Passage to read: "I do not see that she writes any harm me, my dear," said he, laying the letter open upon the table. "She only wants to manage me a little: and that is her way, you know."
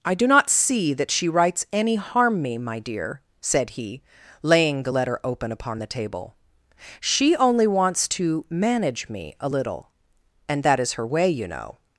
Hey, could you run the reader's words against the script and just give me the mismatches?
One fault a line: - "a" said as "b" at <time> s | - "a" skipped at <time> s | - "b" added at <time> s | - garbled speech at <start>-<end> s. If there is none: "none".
none